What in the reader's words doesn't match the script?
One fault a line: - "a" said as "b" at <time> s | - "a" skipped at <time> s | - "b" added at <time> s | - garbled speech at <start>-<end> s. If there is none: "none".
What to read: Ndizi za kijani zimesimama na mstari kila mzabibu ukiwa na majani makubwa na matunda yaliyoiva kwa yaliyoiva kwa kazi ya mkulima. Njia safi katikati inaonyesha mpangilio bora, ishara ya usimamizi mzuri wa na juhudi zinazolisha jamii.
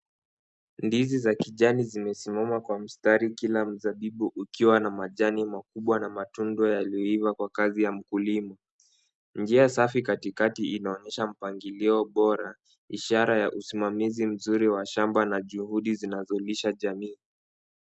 - "na" said as "kwa" at 2.6 s
- "yaliyoiva kwa" skipped at 7.5 s
- "shamba" added at 14.9 s